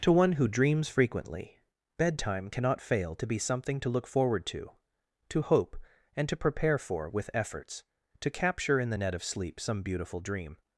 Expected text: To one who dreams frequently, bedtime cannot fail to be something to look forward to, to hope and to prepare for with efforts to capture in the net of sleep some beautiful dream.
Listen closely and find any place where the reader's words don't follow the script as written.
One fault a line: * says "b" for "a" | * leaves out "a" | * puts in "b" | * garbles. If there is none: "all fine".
all fine